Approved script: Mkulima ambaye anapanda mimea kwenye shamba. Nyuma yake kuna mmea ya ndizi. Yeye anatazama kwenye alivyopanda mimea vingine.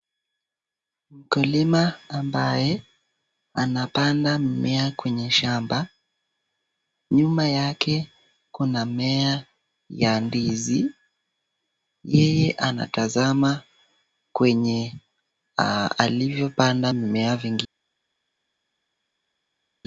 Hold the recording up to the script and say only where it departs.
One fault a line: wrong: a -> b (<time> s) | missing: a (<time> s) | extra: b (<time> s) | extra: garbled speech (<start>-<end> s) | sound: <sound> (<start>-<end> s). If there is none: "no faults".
no faults